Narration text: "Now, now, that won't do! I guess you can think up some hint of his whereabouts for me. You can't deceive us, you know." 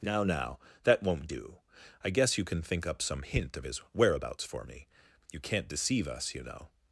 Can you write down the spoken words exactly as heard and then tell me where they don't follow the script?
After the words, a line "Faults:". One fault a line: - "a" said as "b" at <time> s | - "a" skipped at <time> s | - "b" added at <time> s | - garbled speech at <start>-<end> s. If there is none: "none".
"Now, now, that won't do! I guess you can think up some hint of his whereabouts for me. You can't deceive us, you know."
Faults:
none